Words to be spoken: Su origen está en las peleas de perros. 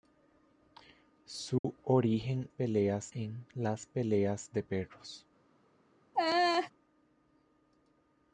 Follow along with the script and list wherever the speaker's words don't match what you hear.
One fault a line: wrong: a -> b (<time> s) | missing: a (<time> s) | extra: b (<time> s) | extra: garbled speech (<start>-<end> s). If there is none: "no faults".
wrong: está -> peleas (2.5 s)